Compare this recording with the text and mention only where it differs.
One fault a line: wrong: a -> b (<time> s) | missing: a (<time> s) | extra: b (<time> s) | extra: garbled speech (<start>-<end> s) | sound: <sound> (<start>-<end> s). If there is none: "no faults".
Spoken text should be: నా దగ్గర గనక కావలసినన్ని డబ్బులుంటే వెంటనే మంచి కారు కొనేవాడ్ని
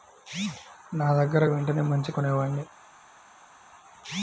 missing: గనక కావలసినన్ని డబ్బులుంటే (1.4 s)
missing: కారు (2.1 s)